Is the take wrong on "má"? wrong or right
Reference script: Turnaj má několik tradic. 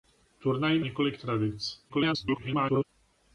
wrong